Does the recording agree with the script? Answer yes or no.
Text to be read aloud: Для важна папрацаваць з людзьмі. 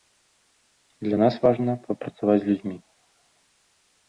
no